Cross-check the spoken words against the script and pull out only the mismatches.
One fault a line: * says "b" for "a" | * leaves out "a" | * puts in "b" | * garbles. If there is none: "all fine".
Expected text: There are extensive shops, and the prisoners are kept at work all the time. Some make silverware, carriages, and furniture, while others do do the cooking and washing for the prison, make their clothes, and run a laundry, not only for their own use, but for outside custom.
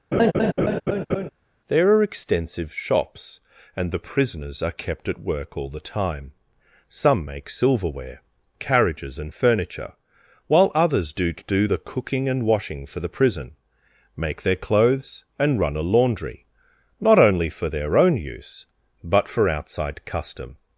all fine